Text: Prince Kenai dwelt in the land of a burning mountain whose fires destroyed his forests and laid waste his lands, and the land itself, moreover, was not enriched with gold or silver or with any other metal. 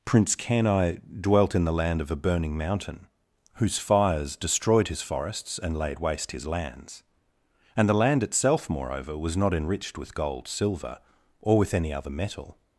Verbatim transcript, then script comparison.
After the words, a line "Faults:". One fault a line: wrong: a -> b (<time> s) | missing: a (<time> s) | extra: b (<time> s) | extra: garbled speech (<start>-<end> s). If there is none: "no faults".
Prince Kenai dwelt in the land of a burning mountain whose fires destroyed his forests and laid waste his lands, and the land itself, moreover, was not enriched with gold silver or with any other metal.
Faults:
missing: or (10.5 s)